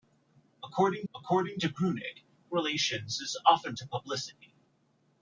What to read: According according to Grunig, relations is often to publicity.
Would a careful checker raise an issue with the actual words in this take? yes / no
no